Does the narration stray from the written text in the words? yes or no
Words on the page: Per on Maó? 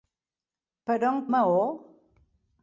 no